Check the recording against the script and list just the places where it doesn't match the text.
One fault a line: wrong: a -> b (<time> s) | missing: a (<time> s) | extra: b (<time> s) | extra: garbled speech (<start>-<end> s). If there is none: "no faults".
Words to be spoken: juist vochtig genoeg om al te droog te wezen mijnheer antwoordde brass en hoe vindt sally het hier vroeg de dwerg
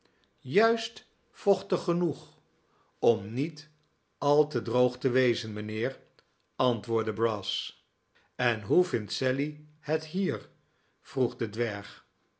extra: niet (3.3 s)